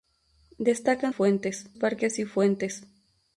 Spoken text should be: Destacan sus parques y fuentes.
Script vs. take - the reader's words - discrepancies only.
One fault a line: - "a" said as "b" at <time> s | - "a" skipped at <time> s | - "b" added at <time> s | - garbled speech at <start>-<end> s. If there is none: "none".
- "sus" said as "fuentes" at 1.1 s